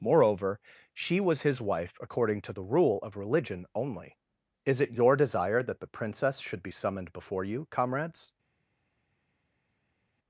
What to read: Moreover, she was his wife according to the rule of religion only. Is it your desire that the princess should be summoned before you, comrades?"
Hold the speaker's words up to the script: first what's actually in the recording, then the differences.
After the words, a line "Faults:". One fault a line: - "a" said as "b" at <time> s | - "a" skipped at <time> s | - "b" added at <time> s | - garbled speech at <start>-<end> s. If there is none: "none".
Moreover, she was his wife according to the rule of religion only. Is it your desire that the princess should be summoned before you, comrades?"
Faults:
none